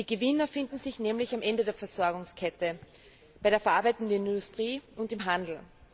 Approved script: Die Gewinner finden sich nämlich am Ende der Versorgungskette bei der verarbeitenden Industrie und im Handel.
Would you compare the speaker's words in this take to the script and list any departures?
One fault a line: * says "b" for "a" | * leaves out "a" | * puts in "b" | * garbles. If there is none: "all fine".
all fine